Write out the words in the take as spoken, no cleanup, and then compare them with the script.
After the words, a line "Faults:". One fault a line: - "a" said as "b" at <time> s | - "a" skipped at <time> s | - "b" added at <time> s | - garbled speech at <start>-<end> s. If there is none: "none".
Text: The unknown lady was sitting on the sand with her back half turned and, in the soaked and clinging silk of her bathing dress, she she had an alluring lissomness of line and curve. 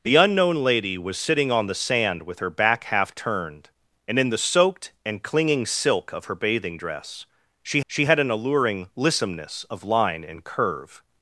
The unknown lady was sitting on the sand with her back half turned and, in the soaked and clinging silk of her bathing dress, she she had an alluring lissomness of line and curve.
Faults:
none